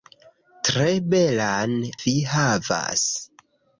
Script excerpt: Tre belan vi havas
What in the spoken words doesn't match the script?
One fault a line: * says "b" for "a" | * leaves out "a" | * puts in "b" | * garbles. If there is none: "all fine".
all fine